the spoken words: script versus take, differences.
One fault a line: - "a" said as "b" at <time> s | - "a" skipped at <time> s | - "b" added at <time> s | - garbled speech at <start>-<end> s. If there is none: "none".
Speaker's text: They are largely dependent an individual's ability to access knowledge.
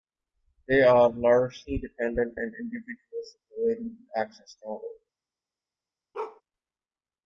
none